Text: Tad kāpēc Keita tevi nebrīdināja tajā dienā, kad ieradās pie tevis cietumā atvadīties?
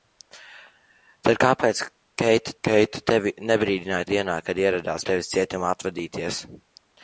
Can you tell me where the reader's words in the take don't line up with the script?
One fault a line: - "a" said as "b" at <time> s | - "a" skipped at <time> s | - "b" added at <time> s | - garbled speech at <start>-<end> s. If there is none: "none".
- "Keita" added at 2.6 s
- "tajā" skipped at 4.1 s
- "pie" skipped at 5.1 s